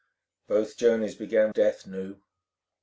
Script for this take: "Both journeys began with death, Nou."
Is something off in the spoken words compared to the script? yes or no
yes